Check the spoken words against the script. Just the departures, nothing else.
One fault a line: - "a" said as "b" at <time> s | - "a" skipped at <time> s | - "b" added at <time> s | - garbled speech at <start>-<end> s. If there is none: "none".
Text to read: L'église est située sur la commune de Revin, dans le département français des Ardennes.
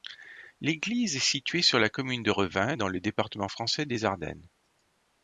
none